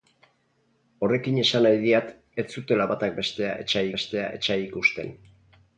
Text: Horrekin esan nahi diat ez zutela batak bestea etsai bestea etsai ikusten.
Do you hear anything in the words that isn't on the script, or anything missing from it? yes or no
no